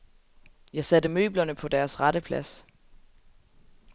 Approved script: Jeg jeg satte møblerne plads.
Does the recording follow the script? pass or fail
fail